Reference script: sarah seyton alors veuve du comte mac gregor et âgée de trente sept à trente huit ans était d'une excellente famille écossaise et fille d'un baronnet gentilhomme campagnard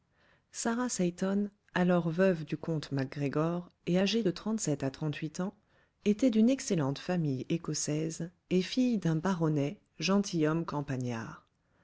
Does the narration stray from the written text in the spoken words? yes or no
no